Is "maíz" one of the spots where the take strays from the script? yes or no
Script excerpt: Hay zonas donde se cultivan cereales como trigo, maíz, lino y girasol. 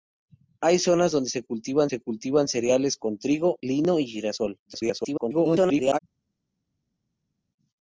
yes